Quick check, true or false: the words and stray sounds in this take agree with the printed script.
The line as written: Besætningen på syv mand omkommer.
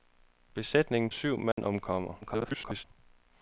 false